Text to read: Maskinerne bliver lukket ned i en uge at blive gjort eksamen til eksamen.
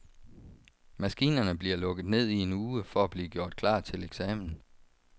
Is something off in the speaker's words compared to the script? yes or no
yes